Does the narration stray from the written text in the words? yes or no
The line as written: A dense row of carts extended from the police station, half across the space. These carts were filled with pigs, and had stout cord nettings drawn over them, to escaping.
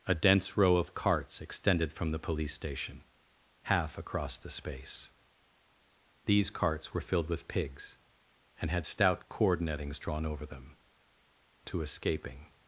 no